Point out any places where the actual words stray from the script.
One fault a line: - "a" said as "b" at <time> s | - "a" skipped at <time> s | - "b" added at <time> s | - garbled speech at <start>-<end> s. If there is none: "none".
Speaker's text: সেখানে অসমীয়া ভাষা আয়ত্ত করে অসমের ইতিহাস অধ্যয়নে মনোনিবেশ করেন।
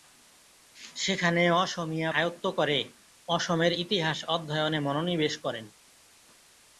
- "ভাষা" skipped at 2.1 s